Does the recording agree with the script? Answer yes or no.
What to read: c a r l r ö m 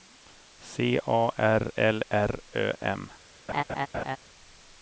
yes